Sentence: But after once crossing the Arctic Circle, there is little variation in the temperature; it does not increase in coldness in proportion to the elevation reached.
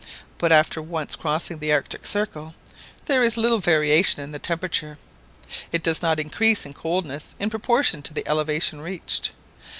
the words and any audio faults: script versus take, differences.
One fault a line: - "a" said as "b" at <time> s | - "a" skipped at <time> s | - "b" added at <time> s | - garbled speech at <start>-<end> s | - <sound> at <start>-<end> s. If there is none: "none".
none